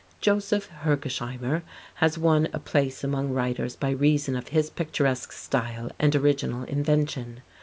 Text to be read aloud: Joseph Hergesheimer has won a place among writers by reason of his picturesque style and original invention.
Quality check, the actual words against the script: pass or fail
pass